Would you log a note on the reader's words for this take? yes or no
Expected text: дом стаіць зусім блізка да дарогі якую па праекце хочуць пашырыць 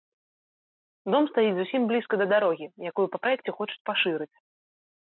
no